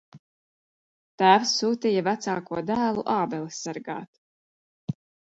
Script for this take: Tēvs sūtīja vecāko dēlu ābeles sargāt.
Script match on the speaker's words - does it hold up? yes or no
yes